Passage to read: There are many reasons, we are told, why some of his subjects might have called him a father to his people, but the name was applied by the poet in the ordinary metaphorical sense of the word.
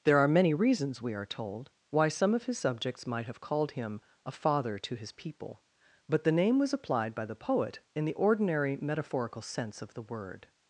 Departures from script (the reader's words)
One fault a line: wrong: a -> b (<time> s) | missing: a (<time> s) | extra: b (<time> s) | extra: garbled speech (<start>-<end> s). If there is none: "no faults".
no faults